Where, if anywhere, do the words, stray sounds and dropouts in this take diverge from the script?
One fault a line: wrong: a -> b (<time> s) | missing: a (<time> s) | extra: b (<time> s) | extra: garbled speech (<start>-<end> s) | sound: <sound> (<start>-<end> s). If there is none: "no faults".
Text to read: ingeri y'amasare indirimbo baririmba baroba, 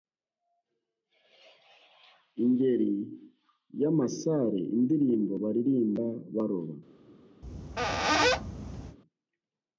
sound: squeak (7.4-9.0 s)